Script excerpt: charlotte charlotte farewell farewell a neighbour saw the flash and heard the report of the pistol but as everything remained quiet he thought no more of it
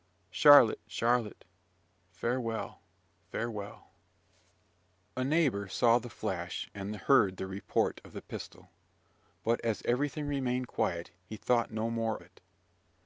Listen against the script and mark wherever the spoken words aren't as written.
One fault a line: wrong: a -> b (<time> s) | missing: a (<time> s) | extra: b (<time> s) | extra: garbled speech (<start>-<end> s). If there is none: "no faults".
missing: of (12.2 s)